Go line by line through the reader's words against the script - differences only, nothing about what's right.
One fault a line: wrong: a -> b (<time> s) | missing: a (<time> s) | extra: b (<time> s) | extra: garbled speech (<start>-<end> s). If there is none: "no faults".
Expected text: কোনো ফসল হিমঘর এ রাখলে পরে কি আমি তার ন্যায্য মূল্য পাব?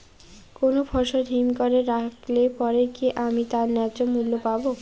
no faults